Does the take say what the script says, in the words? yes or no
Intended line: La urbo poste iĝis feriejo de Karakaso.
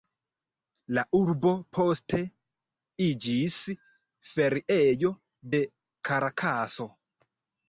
yes